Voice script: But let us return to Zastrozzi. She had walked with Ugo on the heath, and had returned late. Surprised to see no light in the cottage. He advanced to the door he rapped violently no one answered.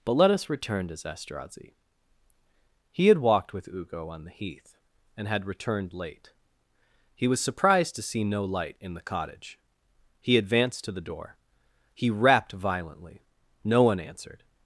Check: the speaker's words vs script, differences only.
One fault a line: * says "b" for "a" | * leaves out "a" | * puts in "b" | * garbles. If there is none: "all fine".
* says "He" for "She"
* puts in "He was"